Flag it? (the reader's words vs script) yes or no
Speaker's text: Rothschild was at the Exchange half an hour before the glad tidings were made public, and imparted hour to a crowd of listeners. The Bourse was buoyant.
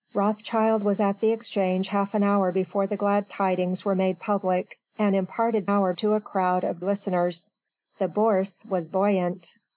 no